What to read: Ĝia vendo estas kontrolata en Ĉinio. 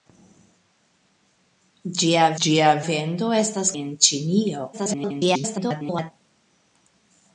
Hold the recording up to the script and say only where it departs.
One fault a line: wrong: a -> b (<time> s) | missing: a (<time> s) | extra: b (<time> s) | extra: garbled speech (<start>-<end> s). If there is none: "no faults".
extra: ĝia (2.4 s)
missing: kontrolata (3.7 s)
extra: garbled speech (4.7-6.1 s)